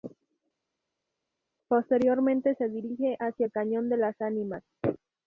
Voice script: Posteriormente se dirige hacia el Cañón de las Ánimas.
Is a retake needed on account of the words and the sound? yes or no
no